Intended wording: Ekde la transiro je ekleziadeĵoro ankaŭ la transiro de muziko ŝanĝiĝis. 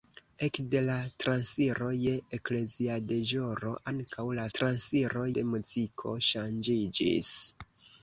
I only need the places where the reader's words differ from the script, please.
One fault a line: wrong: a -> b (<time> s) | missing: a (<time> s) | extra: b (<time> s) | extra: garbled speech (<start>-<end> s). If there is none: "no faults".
no faults